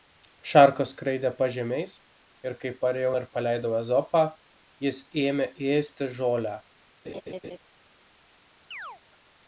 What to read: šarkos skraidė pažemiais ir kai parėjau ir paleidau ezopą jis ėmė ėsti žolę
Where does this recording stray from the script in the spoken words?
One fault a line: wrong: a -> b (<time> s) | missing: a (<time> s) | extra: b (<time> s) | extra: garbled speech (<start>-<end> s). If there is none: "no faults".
no faults